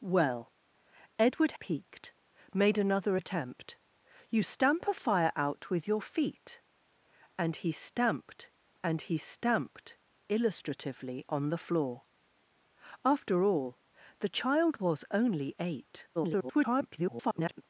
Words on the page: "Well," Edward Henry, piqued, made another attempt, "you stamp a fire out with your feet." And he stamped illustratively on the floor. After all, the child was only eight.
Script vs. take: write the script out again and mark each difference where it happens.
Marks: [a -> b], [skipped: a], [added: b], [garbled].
"Well," Edward [skipped: Henry,] piqued, made another attempt, "you stamp a fire out with your feet." And he stamped [added: and he stamped] illustratively on the floor. After all, the child was only eight. [garbled]